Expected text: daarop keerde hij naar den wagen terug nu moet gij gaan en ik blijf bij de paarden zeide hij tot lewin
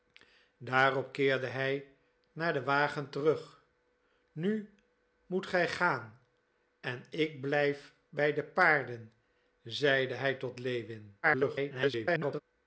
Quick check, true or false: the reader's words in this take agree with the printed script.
false